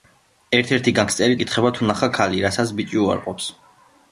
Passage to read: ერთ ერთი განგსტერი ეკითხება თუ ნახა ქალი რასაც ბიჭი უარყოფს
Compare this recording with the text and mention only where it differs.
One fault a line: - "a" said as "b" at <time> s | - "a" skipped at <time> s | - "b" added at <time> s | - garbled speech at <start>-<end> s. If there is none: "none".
none